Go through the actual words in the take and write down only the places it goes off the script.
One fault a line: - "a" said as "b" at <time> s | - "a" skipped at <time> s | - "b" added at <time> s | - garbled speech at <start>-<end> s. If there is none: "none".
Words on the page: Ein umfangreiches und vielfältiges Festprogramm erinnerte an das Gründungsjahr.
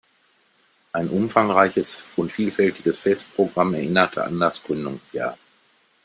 none